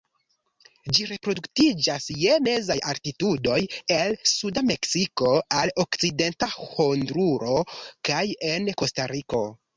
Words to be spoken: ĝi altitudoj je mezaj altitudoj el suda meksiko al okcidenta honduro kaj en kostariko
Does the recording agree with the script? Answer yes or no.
no